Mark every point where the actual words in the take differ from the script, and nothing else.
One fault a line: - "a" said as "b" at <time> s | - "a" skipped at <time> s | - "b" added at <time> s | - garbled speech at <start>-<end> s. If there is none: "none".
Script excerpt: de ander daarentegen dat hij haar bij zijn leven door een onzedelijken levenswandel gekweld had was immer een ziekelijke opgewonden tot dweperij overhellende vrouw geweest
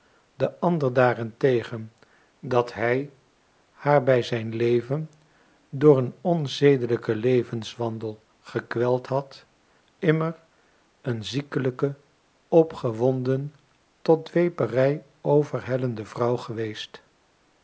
- "was" skipped at 9.4 s